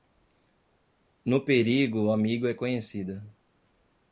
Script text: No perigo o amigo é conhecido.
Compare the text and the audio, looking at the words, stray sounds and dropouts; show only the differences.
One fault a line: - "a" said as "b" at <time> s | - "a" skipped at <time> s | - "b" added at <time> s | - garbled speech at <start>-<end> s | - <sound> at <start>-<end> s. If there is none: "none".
none